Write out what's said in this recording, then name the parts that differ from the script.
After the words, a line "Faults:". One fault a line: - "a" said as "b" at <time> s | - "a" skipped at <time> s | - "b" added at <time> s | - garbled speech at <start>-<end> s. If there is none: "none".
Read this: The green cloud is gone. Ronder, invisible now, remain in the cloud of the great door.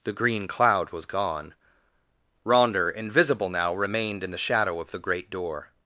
The green cloud was gone. Ronder, invisible now, remained in the shadow of the great door.
Faults:
- "is" said as "was" at 0.9 s
- "remain" said as "remained" at 3.8 s
- "cloud" said as "shadow" at 4.4 s